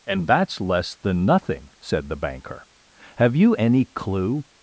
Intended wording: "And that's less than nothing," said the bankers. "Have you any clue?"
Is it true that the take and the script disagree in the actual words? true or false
true